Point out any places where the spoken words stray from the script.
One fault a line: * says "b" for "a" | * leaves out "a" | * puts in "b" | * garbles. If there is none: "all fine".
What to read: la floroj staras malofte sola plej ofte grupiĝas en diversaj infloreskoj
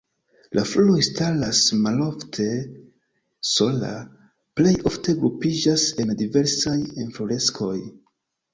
all fine